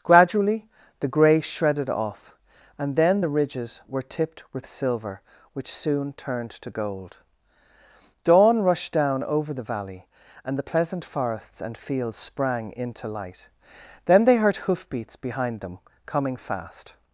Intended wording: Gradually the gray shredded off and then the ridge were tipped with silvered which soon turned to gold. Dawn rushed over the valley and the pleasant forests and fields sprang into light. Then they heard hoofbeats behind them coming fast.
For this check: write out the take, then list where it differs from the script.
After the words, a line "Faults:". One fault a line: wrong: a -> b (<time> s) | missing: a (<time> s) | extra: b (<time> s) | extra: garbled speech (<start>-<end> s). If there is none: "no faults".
Gradually the gray shredded off and then the ridges were tipped with silver which soon turned to gold. Dawn rushed down over the valley and the pleasant forests and fields sprang into light. Then they heard hoofbeats behind them coming fast.
Faults:
wrong: ridge -> ridges (3.3 s)
wrong: silvered -> silver (4.7 s)
extra: down (8.9 s)